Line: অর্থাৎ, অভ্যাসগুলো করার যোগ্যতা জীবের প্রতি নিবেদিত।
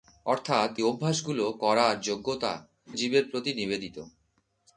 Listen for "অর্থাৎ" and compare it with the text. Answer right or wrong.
right